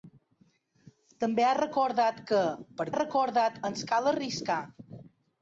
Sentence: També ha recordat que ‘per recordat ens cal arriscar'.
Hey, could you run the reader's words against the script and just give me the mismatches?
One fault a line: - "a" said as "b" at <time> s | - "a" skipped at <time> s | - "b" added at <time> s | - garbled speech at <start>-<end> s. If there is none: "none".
none